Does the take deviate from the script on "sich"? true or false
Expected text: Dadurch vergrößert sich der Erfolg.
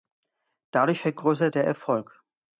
true